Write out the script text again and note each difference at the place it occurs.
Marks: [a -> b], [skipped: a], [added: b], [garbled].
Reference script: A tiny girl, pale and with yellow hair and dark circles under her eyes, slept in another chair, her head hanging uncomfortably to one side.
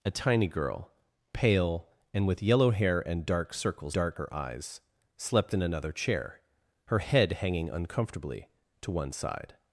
A tiny girl, pale and with yellow hair and dark circles [under -> dark] her eyes, slept in another chair, her head hanging uncomfortably to one side.